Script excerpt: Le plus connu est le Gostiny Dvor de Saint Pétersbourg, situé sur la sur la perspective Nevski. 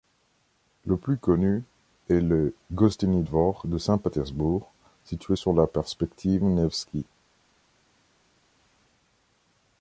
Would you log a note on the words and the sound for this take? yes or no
yes